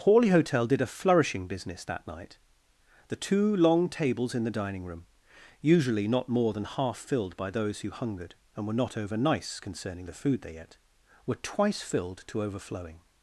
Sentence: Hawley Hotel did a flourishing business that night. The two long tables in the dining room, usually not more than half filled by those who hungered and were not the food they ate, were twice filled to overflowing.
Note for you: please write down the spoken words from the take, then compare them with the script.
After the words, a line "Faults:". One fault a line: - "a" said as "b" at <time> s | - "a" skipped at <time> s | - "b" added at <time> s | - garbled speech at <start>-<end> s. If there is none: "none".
Hawley Hotel did a flourishing business that night. The two long tables in the dining room, usually not more than half filled by those who hungered and were not over nice concerning the food they ate, were twice filled to overflowing.
Faults:
- "over nice concerning" added at 9.0 s